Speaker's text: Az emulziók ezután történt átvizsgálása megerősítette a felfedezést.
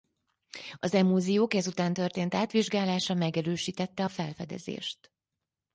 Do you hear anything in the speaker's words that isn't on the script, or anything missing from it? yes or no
no